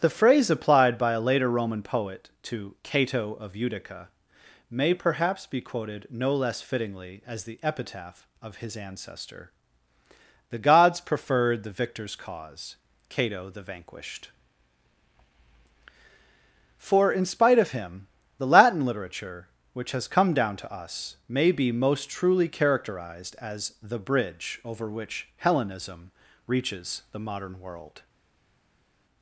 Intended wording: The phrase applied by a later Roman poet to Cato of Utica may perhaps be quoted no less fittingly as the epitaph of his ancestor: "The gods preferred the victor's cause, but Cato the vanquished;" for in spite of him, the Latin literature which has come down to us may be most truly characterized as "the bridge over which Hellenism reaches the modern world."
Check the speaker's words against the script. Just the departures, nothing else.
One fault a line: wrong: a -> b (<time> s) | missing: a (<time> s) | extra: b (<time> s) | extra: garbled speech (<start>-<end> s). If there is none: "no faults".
missing: but (12.8 s)